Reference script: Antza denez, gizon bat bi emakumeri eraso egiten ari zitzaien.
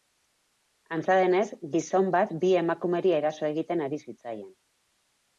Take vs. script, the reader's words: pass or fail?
pass